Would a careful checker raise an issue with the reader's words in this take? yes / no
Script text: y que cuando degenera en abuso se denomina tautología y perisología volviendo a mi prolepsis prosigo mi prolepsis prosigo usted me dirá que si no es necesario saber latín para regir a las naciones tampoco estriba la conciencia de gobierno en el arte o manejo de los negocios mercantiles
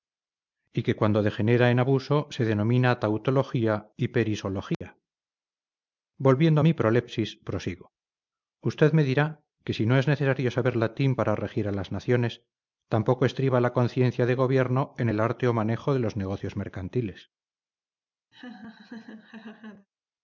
yes